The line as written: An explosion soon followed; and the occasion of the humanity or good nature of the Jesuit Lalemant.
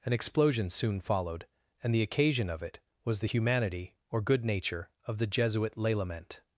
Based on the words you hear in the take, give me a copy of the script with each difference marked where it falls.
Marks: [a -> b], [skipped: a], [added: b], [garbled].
An explosion soon followed; and the occasion of [added: it was] the humanity or good nature of the Jesuit Lalemant.